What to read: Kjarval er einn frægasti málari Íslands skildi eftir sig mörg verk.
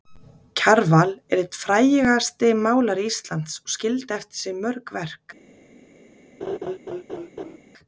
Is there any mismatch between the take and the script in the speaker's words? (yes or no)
yes